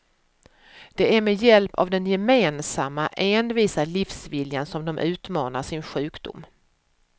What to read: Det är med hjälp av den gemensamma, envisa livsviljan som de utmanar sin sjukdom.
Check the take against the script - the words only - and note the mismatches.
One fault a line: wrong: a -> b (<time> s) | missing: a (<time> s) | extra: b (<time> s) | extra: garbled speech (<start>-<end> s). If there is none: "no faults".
no faults